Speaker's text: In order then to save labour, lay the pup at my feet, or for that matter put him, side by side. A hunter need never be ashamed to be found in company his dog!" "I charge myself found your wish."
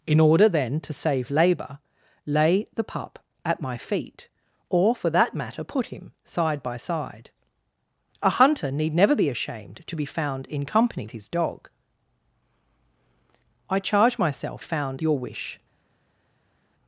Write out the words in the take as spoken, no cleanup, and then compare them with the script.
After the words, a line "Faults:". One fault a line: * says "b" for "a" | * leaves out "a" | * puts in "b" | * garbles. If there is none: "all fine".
In order then to save labour, lay the pup at my feet, or for that matter put him, side by side. A hunter need never be ashamed to be found in company his dog!" "I charge myself found your wish."
Faults:
all fine